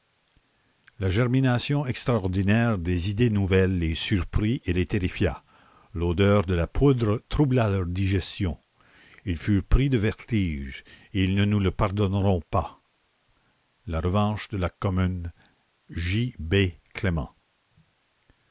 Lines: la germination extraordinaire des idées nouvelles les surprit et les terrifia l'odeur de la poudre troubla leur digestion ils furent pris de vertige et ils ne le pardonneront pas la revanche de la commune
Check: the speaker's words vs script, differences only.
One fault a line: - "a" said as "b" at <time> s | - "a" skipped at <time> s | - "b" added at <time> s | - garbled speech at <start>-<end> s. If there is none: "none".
- "nous" added at 11.4 s